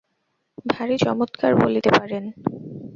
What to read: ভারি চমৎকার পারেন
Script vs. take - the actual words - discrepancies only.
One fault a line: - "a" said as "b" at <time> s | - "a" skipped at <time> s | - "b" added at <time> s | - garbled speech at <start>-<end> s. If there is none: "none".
- "বলিতে" added at 1.6 s